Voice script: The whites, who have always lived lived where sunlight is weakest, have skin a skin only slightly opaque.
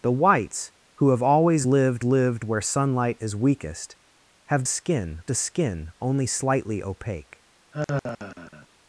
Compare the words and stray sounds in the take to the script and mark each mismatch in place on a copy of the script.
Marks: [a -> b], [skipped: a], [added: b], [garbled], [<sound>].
The whites, who have always lived lived where sunlight is weakest, have skin a skin only slightly opaque. [sigh]